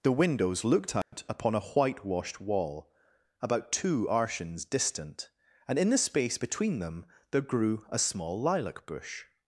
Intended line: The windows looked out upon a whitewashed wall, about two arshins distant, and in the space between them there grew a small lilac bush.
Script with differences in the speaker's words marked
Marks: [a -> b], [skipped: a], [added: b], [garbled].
The windows looked out upon a whitewashed wall, about two arshins distant, and in the space between them there grew a small lilac bush.